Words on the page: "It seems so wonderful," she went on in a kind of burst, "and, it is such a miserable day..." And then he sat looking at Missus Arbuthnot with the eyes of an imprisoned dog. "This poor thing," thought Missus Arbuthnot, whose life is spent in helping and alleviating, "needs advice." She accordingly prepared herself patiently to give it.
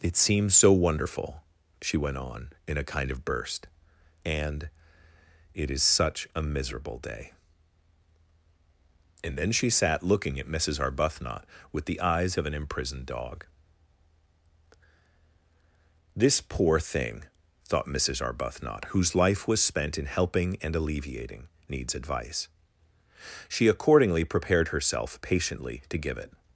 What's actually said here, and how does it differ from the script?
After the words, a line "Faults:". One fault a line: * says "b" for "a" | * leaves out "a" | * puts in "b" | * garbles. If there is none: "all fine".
"It seems so wonderful," she went on in a kind of burst, "and, it is such a miserable day..." And then she sat looking at Missus Arbuthnot with the eyes of an imprisoned dog. "This poor thing," thought Missus Arbuthnot, whose life was spent in helping and alleviating, "needs advice." She accordingly prepared herself patiently to give it.
Faults:
* says "she" for "he"
* says "was" for "is"